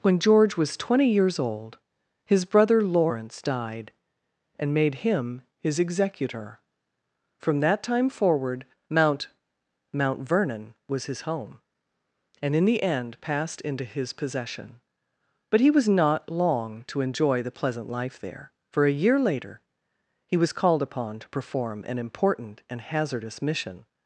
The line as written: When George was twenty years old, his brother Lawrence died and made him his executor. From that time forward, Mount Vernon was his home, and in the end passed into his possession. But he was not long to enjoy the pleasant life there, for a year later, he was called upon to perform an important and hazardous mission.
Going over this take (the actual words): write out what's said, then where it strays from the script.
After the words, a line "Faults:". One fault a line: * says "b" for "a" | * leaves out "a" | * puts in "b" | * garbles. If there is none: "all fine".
When George was twenty years old, his brother Lawrence died and made him his executor. From that time forward, Mount Mount Vernon was his home, and in the end passed into his possession. But he was not long to enjoy the pleasant life there, for a year later, he was called upon to perform an important and hazardous mission.
Faults:
* puts in "Mount"